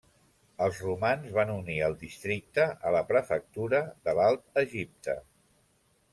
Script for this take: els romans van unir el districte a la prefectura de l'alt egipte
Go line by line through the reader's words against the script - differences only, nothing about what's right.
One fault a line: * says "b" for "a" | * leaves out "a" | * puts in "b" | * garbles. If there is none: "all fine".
all fine